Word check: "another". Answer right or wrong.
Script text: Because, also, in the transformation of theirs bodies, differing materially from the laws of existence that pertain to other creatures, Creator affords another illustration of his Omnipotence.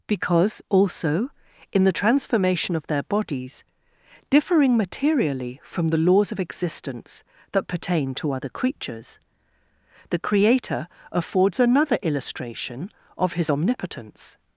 right